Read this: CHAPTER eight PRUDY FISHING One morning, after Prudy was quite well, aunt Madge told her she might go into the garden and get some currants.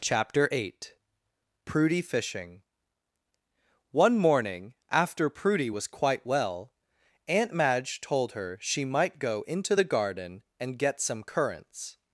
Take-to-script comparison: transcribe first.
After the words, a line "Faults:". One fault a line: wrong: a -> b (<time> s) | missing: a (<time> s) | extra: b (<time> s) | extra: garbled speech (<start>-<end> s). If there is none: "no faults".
CHAPTER eight PRUDY FISHING One morning, after Prudy was quite well, aunt Madge told her she might go into the garden and get some currants.
Faults:
no faults